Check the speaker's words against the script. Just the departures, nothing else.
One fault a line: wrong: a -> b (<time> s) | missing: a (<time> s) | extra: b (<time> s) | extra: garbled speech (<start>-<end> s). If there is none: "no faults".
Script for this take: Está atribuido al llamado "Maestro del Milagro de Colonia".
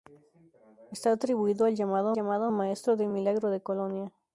extra: llamado (2.1 s)